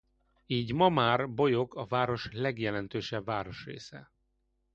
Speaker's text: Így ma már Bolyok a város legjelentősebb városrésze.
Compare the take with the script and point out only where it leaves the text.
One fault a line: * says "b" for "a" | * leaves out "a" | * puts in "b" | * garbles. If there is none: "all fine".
all fine